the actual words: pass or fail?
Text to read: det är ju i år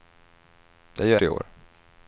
pass